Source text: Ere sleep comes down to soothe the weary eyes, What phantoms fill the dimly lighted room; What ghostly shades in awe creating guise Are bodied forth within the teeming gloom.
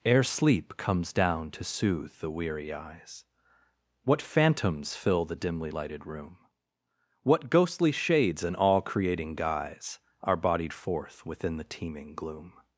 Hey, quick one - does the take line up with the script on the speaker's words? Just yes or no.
no